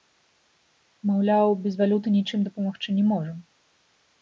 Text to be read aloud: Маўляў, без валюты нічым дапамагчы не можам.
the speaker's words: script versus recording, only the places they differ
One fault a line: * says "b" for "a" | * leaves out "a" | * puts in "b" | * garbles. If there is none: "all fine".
all fine